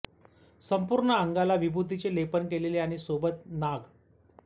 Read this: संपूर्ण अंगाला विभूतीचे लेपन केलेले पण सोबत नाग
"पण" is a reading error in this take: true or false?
true